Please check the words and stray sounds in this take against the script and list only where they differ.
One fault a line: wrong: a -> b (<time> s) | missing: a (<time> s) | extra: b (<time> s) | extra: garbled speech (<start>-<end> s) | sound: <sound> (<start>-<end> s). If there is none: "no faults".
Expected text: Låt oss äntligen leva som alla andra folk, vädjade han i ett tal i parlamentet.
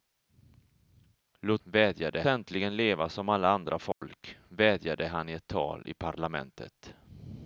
wrong: oss -> vädjade (1.6 s)
sound: dropout (3.9-4.0 s)